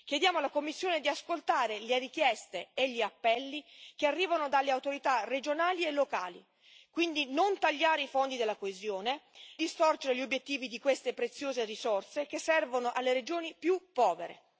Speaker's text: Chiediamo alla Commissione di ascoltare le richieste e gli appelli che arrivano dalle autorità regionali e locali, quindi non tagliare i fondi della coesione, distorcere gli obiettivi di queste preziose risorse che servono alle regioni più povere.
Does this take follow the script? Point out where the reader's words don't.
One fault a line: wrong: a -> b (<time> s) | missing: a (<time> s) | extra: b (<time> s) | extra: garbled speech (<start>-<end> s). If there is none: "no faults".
no faults